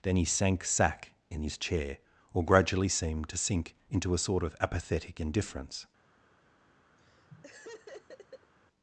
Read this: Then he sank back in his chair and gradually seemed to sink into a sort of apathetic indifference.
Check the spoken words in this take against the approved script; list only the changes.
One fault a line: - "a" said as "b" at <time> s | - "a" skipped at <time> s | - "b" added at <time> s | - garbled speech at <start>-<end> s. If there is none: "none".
- "back" said as "sack" at 0.6 s
- "and" said as "or" at 2.3 s